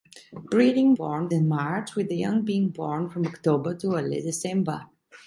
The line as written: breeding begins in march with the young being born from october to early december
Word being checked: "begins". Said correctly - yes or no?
no